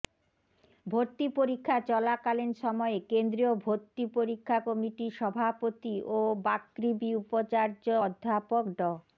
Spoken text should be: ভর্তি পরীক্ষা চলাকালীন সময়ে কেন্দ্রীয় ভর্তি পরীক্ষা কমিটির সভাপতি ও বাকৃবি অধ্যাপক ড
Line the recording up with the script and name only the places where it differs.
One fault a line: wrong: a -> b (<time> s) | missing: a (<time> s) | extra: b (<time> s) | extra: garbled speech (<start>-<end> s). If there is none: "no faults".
extra: উপাচার্য (7.2 s)